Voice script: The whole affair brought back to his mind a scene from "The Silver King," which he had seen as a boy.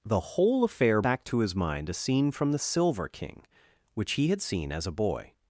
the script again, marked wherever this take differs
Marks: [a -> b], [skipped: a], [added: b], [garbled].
The whole affair [skipped: brought] back to his mind a scene from "The Silver King," which he had seen as a boy.